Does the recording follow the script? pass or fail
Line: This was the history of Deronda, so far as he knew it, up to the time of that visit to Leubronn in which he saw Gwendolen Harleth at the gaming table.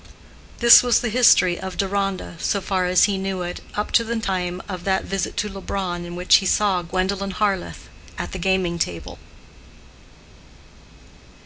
pass